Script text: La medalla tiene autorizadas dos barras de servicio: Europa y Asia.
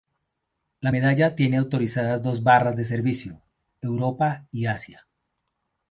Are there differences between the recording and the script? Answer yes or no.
no